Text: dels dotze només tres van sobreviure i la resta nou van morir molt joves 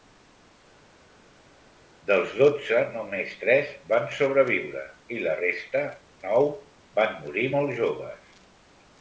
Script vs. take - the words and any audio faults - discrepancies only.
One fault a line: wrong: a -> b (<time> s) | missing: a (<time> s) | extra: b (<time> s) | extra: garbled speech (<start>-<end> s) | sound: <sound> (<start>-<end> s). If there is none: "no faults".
no faults